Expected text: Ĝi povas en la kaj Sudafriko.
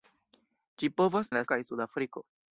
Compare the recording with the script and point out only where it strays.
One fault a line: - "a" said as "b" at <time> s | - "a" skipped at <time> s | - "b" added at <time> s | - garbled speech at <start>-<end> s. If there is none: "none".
none